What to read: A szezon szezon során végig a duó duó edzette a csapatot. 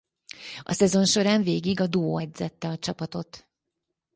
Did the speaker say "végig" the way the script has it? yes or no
yes